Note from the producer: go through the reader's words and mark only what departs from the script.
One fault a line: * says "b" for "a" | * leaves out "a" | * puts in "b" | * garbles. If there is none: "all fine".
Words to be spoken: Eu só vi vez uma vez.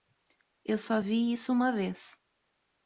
* says "isso" for "vez"